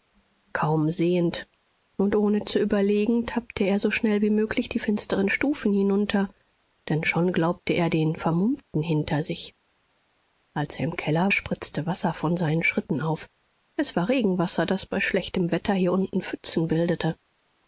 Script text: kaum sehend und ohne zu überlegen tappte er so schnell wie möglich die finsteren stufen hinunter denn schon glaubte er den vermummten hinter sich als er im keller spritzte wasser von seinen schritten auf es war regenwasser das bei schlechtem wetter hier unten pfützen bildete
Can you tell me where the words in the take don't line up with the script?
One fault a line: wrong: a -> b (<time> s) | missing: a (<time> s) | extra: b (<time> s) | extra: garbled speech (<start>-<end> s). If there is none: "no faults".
no faults